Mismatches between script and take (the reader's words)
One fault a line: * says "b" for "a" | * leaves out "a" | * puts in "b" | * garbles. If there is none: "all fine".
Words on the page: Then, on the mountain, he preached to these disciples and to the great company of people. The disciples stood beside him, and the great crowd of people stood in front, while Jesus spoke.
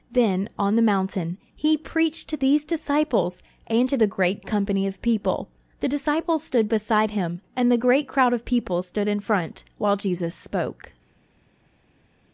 all fine